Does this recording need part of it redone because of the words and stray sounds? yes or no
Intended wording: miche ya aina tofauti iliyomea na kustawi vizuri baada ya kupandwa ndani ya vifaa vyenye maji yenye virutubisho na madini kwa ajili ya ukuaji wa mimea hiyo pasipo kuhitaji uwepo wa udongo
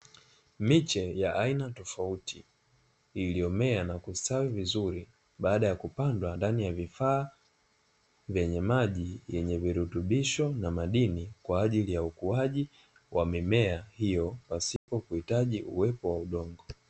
yes